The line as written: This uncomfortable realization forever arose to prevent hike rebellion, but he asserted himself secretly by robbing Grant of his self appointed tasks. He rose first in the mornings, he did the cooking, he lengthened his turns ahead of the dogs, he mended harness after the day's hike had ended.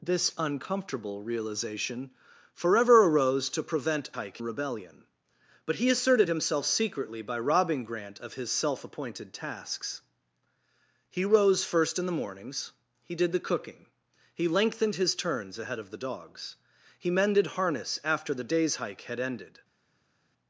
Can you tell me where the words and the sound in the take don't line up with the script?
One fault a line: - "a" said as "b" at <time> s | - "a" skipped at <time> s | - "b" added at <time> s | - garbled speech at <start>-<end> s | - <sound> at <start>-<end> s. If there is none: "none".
none